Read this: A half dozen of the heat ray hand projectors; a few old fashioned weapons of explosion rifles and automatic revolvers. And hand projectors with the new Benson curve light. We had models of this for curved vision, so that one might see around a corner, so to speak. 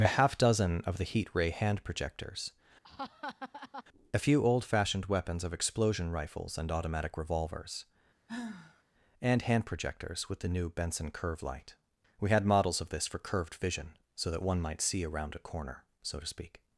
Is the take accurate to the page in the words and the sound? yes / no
no